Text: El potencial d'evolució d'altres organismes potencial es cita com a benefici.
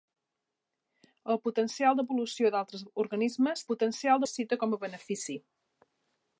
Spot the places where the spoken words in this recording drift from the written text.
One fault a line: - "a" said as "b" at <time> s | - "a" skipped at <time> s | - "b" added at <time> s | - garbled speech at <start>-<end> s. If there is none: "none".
none